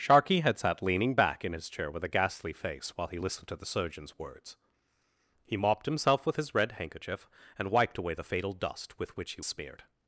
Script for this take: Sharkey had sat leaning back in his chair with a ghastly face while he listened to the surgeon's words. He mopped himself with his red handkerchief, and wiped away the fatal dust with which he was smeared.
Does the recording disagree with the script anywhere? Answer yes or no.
yes